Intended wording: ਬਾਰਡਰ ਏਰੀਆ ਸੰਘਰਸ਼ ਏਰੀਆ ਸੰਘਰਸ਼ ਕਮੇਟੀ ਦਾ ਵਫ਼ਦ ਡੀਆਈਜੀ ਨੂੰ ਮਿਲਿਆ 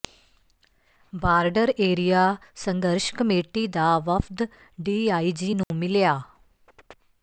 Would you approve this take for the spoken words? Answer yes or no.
no